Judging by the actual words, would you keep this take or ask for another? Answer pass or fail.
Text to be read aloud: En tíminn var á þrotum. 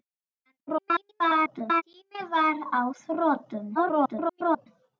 fail